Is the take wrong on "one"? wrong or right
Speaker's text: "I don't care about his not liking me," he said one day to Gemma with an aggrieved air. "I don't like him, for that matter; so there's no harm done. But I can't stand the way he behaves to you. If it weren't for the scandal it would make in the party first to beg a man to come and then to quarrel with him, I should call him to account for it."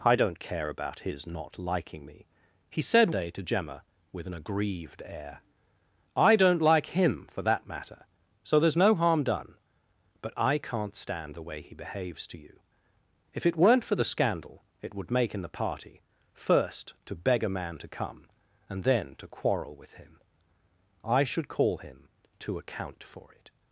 wrong